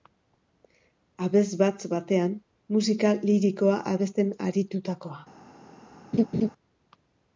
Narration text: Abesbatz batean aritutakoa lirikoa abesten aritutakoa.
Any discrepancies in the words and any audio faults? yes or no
yes